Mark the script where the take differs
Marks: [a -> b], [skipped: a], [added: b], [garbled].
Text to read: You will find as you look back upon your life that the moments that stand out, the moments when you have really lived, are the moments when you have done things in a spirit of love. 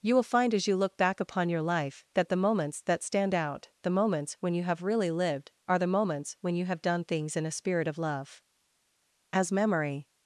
You will find as you look back upon your life that the moments that stand out, the moments when you have really lived, are the moments when you have done things in a spirit of love. [added: As memory]